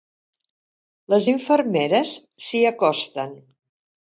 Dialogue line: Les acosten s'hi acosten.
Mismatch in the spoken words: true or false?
true